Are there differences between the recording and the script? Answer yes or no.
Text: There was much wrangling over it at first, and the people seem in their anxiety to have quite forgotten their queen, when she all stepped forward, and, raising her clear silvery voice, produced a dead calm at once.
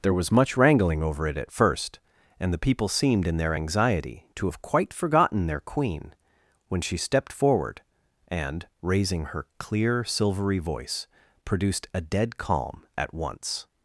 yes